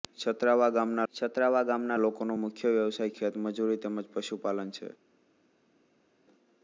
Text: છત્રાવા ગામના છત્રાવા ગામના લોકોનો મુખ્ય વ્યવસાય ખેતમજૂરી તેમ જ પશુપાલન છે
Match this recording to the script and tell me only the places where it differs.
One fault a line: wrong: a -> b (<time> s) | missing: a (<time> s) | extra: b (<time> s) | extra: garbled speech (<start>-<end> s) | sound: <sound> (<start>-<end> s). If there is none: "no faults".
no faults